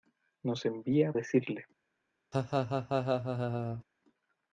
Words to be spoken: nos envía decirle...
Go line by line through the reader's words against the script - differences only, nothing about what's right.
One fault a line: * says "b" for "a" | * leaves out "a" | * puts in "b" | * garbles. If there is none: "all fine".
all fine